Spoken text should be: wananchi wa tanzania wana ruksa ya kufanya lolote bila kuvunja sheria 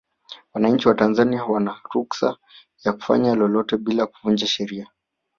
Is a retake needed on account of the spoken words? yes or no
no